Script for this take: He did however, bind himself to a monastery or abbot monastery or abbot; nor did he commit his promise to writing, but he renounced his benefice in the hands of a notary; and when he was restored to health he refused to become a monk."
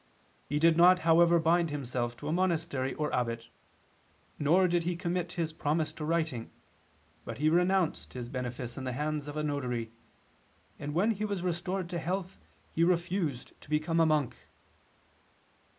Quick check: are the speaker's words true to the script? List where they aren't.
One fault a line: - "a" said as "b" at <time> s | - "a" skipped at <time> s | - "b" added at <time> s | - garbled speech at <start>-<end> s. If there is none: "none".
- "not" added at 0.8 s
- "monastery or abbot" skipped at 3.5 s